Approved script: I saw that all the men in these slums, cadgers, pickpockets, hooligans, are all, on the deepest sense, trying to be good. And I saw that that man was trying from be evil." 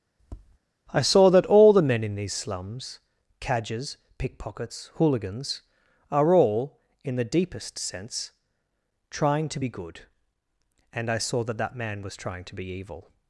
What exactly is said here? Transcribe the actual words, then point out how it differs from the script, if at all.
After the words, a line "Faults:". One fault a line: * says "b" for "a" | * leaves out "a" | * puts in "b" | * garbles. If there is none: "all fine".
I saw that all the men in these slums, cadgers, pickpockets, hooligans, are all, in the deepest sense, trying to be good. And I saw that that man was trying to be evil."
Faults:
* says "in" for "on"
* says "to" for "from"